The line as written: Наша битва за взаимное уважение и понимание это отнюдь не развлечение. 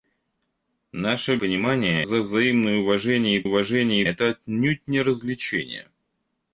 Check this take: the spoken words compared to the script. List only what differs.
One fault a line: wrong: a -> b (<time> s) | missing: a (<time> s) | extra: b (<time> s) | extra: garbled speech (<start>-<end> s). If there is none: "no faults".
wrong: битва -> понимание (1.4 s)
wrong: понимание -> уважение (3.4 s)